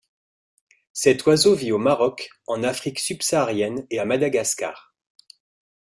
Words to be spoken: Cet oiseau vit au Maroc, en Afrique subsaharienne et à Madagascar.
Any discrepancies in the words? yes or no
no